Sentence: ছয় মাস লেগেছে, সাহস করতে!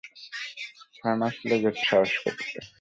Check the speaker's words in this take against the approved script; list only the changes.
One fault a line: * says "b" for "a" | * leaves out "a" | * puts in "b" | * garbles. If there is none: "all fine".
all fine